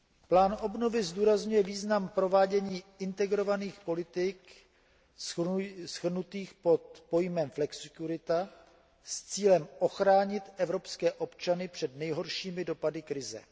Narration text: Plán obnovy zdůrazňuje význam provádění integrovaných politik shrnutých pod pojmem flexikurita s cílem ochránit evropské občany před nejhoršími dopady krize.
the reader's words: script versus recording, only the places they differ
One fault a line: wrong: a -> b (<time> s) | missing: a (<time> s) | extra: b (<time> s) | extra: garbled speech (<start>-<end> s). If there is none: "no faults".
no faults